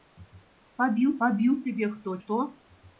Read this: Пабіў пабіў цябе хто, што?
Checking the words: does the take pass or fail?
pass